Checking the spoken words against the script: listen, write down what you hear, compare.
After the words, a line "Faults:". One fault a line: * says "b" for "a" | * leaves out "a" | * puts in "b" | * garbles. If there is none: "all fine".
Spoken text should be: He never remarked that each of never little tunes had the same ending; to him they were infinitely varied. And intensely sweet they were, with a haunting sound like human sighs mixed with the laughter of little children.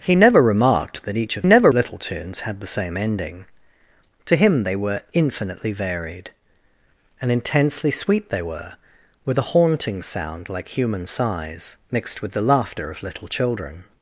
He never remarked that each of never little tunes had the same ending; to him they were infinitely varied. And intensely sweet they were, with a haunting sound like human sighs mixed with the laughter of little children.
Faults:
all fine